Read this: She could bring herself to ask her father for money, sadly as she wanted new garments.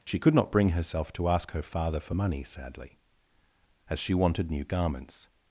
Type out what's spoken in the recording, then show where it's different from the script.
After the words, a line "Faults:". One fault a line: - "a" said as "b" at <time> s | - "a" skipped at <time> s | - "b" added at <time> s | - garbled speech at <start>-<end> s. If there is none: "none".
She could not bring herself to ask her father for money, sadly as she wanted new garments.
Faults:
- "not" added at 0.3 s